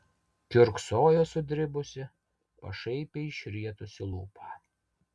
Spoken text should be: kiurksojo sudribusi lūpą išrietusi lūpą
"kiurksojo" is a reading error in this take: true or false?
false